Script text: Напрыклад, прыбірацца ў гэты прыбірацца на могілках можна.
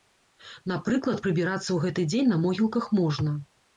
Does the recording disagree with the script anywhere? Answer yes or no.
yes